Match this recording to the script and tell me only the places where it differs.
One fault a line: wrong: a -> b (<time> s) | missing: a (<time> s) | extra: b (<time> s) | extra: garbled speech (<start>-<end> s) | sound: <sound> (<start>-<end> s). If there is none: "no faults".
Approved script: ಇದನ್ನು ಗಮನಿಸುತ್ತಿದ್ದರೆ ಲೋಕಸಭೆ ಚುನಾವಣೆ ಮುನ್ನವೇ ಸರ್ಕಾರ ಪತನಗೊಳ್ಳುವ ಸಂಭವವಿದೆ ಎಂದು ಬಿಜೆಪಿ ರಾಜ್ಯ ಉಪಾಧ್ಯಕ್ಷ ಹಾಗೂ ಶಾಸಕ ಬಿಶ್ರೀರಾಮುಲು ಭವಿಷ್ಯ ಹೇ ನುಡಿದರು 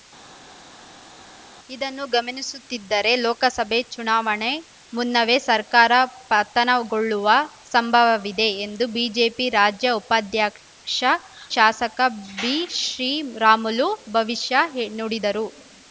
missing: ಹಾಗೂ (11.0 s)